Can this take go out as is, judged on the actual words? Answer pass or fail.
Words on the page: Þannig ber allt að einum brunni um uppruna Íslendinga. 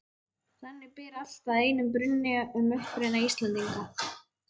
pass